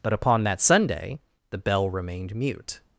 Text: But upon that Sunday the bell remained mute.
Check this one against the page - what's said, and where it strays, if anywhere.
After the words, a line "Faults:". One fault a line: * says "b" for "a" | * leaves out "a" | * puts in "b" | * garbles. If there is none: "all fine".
But upon that Sunday the bell remained mute.
Faults:
all fine